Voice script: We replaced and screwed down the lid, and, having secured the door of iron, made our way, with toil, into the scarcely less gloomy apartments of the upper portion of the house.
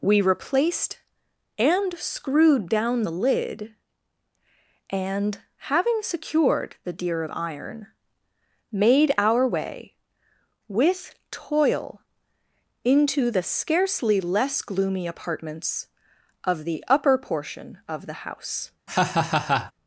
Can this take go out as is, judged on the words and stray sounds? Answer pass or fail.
fail